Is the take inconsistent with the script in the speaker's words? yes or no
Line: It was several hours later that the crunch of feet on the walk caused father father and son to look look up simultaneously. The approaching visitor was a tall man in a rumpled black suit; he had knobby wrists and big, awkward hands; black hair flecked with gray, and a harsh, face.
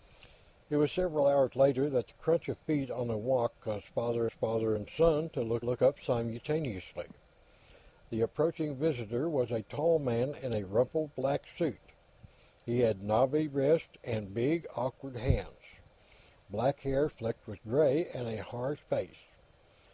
no